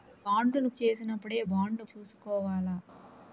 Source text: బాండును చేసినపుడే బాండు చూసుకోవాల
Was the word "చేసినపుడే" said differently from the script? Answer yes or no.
no